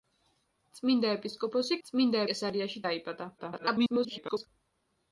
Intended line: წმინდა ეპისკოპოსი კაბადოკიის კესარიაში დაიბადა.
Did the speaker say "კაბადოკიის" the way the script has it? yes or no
no